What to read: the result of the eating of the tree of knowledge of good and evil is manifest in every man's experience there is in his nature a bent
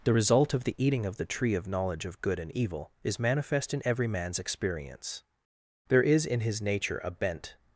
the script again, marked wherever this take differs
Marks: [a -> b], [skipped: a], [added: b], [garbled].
the result of the eating of the tree of knowledge of good and evil is manifest in every man's experience there is in his nature a bent